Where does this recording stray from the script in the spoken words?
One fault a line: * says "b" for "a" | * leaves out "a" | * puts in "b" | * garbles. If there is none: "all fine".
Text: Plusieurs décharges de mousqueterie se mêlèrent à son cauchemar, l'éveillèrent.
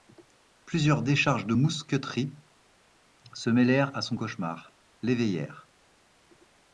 all fine